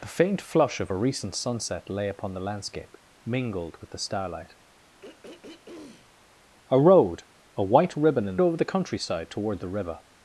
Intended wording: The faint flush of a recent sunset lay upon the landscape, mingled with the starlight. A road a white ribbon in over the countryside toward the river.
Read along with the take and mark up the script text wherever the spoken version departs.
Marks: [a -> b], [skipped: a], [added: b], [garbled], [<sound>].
The faint flush of a recent sunset lay upon the landscape, mingled with the starlight. [throat clearing] A road a white ribbon in over the countryside toward the river.